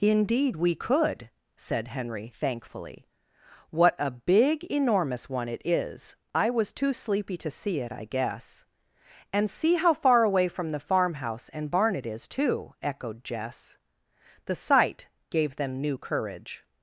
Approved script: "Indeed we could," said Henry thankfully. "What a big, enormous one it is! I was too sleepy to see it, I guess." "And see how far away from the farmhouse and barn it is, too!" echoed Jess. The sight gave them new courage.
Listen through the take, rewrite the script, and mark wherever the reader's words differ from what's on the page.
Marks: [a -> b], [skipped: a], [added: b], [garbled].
"Indeed we could," said Henry thankfully. "What a big, enormous one it is! I was too sleepy to see it, I guess." "And see how far away from the farmhouse and barn it is, too!" echoed Jess. The sight gave them new courage.